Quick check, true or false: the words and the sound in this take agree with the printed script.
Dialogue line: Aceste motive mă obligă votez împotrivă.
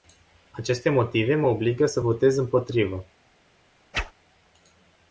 false